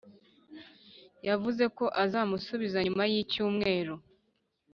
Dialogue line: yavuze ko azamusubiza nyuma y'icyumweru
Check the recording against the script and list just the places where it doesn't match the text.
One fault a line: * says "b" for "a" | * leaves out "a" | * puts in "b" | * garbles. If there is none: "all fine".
all fine